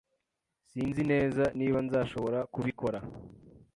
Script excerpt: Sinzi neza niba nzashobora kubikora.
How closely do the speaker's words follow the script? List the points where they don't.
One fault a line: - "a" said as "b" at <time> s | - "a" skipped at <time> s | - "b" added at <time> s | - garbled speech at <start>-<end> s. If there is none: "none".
none